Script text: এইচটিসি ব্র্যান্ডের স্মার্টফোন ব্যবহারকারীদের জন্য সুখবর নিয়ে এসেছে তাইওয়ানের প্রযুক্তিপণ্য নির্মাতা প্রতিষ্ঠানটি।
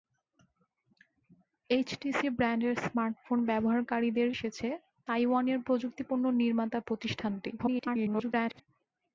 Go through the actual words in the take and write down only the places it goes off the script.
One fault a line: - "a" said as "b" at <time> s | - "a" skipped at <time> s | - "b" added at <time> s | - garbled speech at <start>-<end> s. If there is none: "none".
- "জন্য সুখবর নিয়ে" skipped at 4.3 s
- garbled speech at 7.6-8.6 s